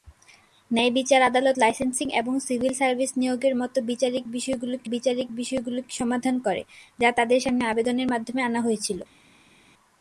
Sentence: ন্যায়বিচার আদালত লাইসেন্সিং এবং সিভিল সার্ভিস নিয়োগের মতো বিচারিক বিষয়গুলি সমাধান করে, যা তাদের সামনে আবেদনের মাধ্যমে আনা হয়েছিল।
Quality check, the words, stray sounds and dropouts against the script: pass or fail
fail